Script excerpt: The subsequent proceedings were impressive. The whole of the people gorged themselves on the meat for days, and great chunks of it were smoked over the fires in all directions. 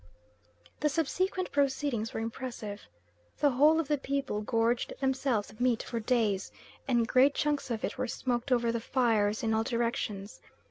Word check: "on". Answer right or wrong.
wrong